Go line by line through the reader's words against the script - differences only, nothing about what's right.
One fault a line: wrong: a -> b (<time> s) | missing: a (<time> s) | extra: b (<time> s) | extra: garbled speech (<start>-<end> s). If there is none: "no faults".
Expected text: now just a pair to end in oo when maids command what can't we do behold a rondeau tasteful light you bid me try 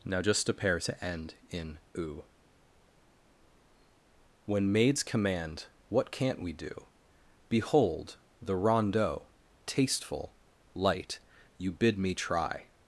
wrong: a -> the (8.4 s)